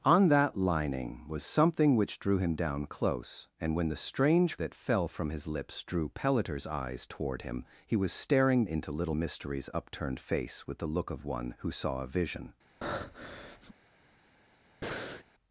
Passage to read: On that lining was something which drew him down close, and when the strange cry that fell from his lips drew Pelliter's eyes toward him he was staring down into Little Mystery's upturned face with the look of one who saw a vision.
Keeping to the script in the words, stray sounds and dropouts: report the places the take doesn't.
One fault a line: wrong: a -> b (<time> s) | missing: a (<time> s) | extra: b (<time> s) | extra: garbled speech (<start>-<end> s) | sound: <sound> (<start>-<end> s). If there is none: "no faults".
missing: cry (4.6 s)
missing: down (8.7 s)
sound: breath (12.8-13.7 s)
sound: breath (14.8-15.2 s)